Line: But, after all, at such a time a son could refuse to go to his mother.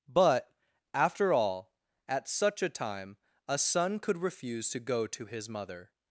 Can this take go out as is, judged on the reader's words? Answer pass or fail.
pass